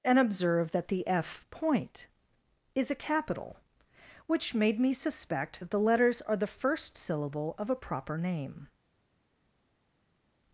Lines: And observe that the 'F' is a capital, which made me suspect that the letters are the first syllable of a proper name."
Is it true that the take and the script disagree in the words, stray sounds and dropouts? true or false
true